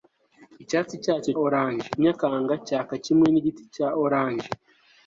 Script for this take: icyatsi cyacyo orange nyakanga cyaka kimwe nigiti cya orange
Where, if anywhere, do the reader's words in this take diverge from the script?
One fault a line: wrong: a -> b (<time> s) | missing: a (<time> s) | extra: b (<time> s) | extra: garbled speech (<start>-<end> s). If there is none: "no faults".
no faults